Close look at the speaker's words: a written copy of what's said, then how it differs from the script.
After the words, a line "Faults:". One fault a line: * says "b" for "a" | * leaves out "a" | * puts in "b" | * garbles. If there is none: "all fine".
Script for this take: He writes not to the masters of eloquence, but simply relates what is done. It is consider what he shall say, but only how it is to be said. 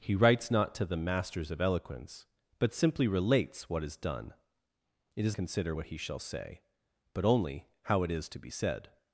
He writes not to the masters of eloquence, but simply relates what is done. It is consider what he shall say, but only how it is to be said.
Faults:
all fine